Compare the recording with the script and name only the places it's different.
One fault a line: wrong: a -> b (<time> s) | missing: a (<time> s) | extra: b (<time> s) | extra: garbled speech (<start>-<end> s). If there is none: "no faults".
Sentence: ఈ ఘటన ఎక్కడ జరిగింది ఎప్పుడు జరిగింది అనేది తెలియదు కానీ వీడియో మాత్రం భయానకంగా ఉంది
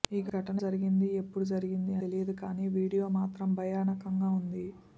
missing: ఎక్కడ (0.6 s)
missing: అనేది (1.9 s)